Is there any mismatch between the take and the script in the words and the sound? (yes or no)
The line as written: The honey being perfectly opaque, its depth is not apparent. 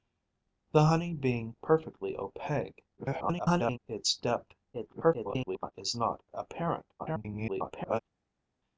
yes